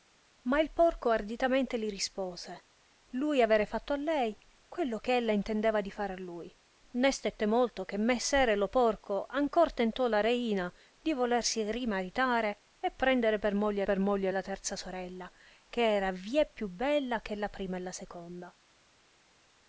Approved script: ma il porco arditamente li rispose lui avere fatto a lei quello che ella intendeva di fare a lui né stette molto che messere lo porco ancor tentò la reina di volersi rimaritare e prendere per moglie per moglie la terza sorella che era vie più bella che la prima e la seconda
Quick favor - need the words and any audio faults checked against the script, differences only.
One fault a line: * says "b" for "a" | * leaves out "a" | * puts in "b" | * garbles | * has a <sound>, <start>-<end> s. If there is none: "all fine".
all fine